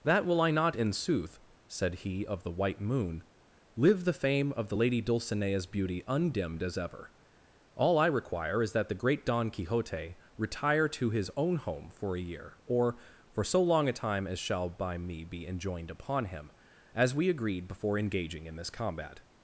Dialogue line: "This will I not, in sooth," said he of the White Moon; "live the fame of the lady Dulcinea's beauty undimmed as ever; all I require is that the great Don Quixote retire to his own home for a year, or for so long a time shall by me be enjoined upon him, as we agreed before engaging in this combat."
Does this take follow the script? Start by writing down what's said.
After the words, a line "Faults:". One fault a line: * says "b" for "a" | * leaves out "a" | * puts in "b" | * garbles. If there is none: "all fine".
"That will I not, in sooth," said he of the White Moon; "live the fame of the lady Dulcinea's beauty undimmed as ever; all I require is that the great Don Quixote retire to his own home for a year, or for so long a time as shall by me be enjoined upon him, as we agreed before engaging in this combat."
Faults:
* says "That" for "This"
* puts in "as"